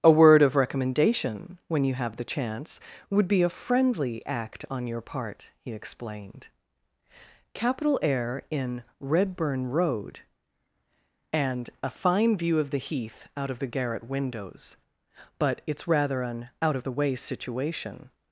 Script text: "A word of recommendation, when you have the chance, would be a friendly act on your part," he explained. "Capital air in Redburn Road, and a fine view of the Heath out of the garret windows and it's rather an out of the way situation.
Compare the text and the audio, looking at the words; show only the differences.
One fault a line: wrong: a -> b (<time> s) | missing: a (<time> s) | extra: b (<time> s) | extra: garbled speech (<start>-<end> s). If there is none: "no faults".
wrong: and -> but (15.4 s)